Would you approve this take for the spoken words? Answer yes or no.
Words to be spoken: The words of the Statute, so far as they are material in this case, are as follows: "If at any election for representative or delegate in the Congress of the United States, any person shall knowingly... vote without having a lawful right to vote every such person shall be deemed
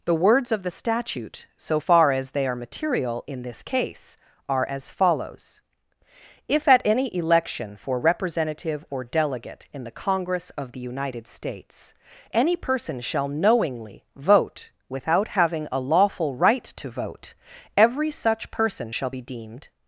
yes